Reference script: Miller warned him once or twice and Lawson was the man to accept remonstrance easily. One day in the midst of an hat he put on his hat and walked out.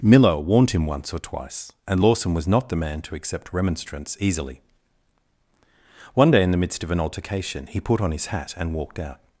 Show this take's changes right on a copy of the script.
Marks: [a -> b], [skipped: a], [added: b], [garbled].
Miller warned him once or twice and Lawson was [added: not] the man to accept remonstrance easily. One day in the midst of an [hat -> altercation] he put on his hat and walked out.